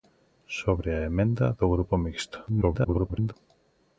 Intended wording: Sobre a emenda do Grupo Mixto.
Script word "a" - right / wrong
right